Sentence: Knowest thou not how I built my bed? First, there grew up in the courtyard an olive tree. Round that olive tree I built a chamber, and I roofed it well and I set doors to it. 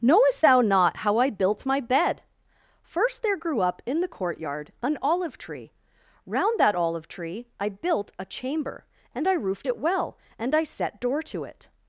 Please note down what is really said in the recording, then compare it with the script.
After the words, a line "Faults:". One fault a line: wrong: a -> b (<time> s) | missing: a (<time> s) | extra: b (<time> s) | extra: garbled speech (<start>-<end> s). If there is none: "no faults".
Knowest thou not how I built my bed? First, there grew up in the courtyard an olive tree. Round that olive tree I built a chamber, and I roofed it well and I set door to it.
Faults:
wrong: doors -> door (11.0 s)